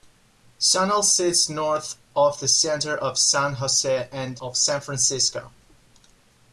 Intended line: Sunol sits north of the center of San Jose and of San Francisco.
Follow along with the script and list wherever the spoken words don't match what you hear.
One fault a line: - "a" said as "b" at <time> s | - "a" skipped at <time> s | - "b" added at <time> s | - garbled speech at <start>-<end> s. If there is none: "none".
none